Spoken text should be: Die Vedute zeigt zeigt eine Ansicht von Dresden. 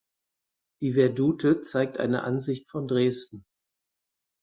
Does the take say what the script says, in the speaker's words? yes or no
no